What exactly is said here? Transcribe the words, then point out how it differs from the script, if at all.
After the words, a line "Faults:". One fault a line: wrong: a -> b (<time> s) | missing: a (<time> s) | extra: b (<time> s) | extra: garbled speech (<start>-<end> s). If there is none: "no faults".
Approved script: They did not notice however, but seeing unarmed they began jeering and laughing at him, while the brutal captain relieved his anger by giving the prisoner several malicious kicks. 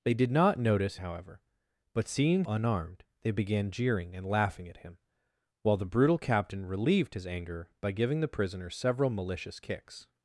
They did not notice however, but seeing unarmed they began jeering and laughing at him, while the brutal captain relieved his anger by giving the prisoner several malicious kicks.
Faults:
no faults